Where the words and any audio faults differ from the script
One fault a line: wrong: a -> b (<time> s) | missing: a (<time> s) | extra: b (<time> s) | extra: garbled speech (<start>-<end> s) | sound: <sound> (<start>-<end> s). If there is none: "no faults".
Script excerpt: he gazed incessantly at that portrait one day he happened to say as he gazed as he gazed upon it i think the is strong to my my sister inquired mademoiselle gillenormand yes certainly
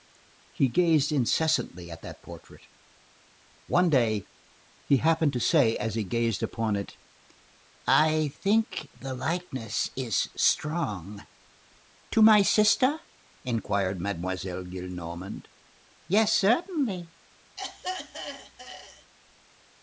missing: as he gazed (6.4 s)
extra: likeness (9.1 s)
missing: my (12.4 s)
sound: throat clearing (17.6-19.1 s)